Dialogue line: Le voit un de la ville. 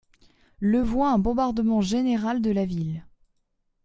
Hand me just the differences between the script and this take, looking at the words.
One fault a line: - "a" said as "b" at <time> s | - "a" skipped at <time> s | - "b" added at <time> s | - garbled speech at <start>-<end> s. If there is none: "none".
- "bombardement général" added at 1.2 s